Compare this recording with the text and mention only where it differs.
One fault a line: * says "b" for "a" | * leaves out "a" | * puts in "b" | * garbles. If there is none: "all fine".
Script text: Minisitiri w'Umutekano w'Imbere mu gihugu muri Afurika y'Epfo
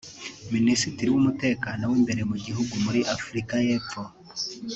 all fine